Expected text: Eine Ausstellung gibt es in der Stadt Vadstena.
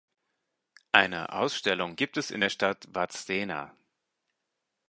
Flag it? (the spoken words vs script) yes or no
no